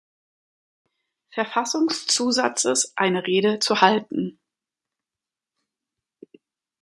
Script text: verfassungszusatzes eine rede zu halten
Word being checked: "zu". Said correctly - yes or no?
yes